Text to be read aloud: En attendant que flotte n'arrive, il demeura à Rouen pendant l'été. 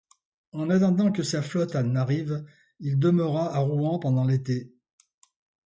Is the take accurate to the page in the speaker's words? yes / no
no